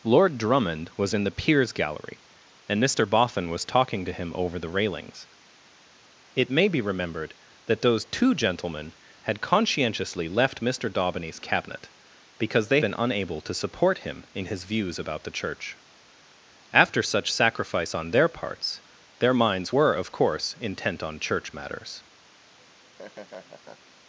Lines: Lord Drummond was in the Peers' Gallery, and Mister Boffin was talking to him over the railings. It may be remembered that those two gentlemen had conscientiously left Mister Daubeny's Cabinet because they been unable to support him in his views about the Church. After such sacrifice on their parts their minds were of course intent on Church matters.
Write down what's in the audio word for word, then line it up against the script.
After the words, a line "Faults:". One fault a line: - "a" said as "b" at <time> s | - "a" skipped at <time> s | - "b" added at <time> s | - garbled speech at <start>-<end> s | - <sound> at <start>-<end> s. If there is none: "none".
Lord Drummond was in the Peers' Gallery, and Mister Boffin was talking to him over the railings. It may be remembered that those two gentlemen had conscientiously left Mister Daubeny's Cabinet because they been unable to support him in his views about the Church. After such sacrifice on their parts their minds were of course intent on Church matters.
Faults:
- laugh at 22.6-23.9 s